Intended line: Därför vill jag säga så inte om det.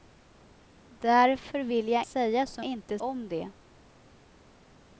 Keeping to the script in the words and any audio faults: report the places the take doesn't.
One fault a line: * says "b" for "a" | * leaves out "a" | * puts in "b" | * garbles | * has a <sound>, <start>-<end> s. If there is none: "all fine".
all fine